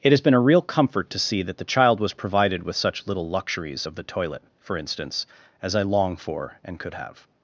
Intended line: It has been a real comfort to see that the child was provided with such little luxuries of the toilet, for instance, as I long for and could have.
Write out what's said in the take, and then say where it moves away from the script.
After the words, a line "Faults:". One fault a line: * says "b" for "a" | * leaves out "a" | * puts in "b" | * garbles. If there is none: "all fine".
It has been a real comfort to see that the child was provided with such little luxuries of the toilet, for instance, as I long for and could have.
Faults:
all fine